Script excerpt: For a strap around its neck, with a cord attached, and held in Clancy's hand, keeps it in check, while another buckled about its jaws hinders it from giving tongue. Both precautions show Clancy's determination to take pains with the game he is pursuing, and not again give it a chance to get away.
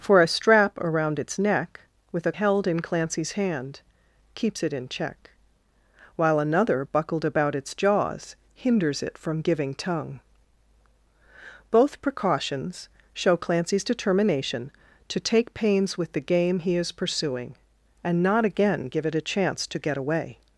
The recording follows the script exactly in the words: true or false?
false